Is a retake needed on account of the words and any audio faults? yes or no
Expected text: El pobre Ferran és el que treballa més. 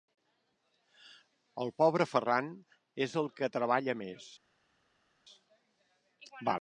no